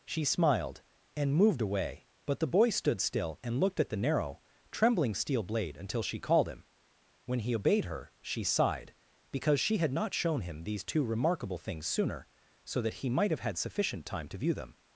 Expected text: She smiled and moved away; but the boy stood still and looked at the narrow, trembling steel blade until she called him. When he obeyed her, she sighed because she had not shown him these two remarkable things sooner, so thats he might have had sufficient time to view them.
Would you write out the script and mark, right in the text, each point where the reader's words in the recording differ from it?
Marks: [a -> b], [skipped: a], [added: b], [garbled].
She smiled and moved away; but the boy stood still and looked at the narrow, trembling steel blade until she called him. When he obeyed her, she sighed because she had not shown him these two remarkable things sooner, so [thats -> that] he might have had sufficient time to view them.